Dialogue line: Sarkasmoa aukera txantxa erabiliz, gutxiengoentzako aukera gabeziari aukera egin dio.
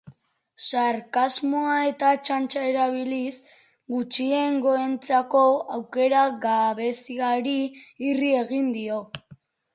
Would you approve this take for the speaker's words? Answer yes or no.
no